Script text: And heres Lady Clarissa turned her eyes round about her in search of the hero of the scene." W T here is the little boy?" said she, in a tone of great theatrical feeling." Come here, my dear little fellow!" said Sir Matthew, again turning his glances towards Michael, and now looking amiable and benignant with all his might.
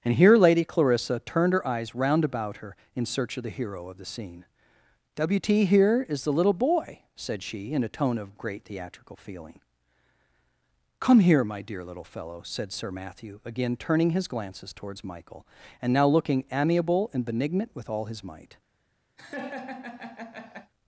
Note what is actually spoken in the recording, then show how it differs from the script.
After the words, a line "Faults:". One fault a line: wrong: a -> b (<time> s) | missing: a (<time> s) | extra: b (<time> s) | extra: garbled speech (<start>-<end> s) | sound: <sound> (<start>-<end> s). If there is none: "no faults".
And here Lady Clarissa turned her eyes round about her in search of the hero of the scene." W T here is the little boy?" said she, in a tone of great theatrical feeling." Come here, my dear little fellow!" said Sir Matthew, again turning his glances towards Michael, and now looking amiable and benignant with all his might.
Faults:
wrong: heres -> here (0.1 s)
sound: laugh (19.2-20.7 s)